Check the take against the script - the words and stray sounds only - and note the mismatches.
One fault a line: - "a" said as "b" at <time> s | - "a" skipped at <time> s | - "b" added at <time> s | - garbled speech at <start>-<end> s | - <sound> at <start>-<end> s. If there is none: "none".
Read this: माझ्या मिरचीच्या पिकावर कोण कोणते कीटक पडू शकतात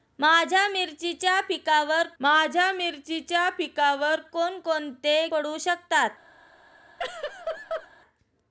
- "माझ्या मिरचीच्या पिकावर" added at 2.2 s
- "कीटक" skipped at 5.3 s
- laugh at 7.0-7.9 s